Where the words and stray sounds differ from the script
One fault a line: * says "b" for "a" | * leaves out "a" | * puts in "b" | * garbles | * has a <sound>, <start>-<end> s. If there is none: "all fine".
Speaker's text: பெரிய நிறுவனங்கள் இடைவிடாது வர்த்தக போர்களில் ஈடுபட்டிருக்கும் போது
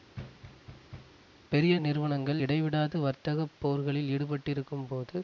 * has a thud, 0.2-1.2 s